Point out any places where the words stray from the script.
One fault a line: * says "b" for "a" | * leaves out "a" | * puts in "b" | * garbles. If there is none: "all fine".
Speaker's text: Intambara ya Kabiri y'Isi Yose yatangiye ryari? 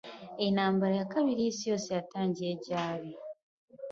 all fine